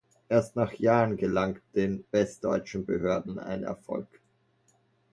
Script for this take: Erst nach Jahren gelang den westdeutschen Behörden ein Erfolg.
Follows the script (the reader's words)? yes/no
yes